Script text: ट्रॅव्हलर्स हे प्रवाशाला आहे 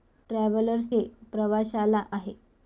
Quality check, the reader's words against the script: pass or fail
pass